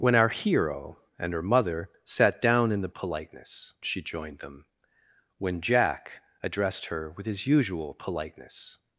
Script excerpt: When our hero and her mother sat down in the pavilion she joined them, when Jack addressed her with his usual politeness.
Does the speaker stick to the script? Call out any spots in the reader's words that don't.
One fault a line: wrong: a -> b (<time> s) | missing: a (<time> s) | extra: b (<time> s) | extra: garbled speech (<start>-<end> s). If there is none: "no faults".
wrong: pavilion -> politeness (2.9 s)